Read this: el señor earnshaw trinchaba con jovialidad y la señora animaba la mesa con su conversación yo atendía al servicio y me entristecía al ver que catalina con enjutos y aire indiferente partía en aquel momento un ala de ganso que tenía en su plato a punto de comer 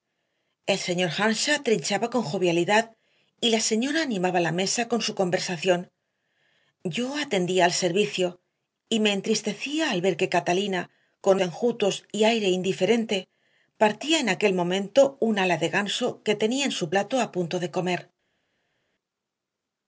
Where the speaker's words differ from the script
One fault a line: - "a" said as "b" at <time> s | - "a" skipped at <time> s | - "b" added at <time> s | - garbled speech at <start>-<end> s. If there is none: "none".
none